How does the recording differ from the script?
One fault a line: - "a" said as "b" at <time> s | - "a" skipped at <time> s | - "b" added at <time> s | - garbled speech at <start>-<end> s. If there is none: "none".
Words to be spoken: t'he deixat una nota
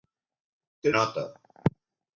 - "deixat una" skipped at 0.9 s